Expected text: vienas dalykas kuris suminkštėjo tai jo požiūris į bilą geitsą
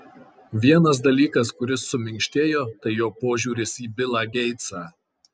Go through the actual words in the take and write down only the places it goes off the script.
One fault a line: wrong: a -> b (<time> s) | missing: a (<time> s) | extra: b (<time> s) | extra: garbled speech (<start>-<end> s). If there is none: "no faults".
no faults